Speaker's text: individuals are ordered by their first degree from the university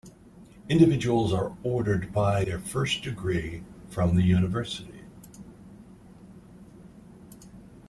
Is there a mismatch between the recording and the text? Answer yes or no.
no